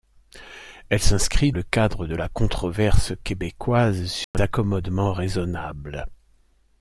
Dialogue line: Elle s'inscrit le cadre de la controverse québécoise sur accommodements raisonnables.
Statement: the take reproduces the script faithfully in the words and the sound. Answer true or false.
false